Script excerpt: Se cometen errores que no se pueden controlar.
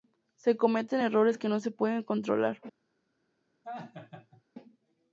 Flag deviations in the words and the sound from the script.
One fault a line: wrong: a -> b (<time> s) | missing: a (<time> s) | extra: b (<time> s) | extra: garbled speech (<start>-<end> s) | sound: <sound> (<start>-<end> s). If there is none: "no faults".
sound: laugh (3.6-4.4 s)